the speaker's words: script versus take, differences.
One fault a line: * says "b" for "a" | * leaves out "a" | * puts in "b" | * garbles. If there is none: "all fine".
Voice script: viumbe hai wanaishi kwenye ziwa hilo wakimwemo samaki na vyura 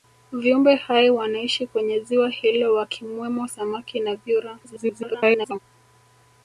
* garbles